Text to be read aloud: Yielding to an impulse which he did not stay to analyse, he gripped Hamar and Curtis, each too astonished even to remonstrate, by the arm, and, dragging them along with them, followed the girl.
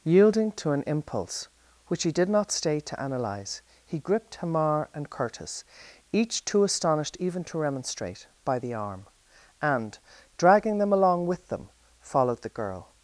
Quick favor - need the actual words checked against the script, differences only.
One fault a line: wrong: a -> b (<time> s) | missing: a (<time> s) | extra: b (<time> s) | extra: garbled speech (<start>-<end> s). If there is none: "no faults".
no faults